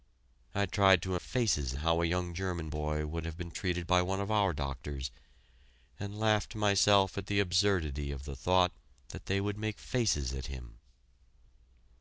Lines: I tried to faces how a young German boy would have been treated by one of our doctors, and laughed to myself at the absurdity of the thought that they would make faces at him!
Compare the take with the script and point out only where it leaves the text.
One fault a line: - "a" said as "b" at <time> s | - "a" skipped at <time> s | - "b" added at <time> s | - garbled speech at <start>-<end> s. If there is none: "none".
none